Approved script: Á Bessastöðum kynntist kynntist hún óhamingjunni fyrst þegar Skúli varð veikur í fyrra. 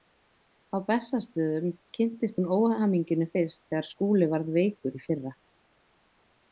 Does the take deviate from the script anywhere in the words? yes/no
yes